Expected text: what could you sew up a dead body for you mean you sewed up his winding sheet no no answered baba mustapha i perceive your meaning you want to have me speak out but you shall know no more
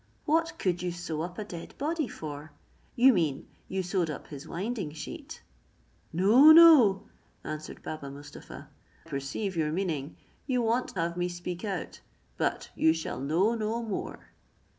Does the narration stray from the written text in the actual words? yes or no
yes